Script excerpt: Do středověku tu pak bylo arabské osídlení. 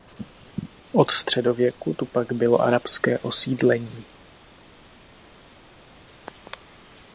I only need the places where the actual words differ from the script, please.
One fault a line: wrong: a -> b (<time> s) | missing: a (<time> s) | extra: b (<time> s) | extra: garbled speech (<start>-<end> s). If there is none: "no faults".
wrong: Do -> Od (0.9 s)